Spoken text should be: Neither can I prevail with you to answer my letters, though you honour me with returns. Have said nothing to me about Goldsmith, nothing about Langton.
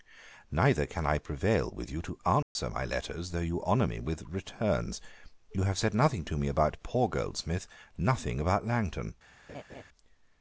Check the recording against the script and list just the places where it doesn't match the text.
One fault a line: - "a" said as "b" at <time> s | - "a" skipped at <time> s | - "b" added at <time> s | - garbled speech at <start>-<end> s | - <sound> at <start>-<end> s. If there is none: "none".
- dropout at 2.4-2.6 s
- "You" added at 5.5 s
- "poor" added at 6.8 s
- laugh at 9.5-9.8 s